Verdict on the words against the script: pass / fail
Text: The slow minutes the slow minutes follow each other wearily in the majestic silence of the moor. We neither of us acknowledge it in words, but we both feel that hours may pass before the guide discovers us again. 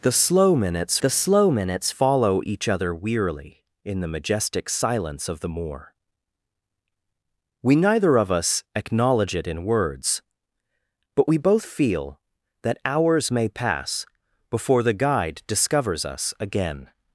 pass